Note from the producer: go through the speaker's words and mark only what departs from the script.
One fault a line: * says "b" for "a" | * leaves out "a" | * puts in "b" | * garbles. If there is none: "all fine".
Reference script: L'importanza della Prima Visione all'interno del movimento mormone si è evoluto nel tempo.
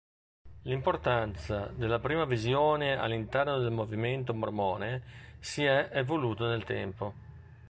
all fine